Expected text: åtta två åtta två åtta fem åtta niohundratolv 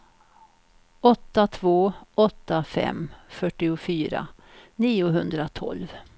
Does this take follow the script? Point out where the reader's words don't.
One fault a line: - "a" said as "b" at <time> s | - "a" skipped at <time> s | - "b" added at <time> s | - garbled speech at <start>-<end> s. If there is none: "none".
- "två åtta" skipped at 2.6 s
- "åtta" said as "fyrtiofyra" at 3.3 s